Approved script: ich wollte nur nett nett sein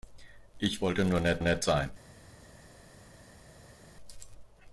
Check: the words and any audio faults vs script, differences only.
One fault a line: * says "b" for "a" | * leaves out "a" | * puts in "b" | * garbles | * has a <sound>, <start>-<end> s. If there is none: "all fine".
all fine